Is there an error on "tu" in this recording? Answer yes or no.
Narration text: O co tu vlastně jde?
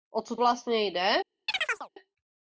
yes